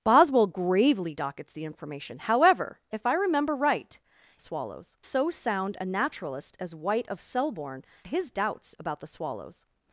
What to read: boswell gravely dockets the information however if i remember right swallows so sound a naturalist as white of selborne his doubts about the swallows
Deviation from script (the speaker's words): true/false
false